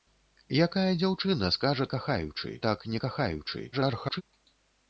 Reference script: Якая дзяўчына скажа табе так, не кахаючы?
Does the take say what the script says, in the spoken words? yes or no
no